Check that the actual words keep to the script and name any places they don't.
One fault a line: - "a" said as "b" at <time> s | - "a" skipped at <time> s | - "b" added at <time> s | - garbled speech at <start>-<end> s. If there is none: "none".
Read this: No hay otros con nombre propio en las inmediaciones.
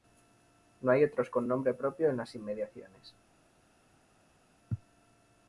none